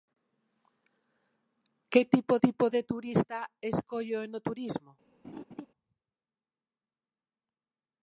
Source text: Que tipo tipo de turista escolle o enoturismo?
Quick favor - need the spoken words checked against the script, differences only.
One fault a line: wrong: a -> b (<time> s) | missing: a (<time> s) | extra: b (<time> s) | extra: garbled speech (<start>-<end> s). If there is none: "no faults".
no faults